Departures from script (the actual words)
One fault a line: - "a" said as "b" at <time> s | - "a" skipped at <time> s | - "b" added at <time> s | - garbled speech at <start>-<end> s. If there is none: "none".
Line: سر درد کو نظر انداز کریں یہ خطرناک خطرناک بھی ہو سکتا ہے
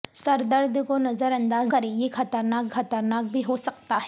none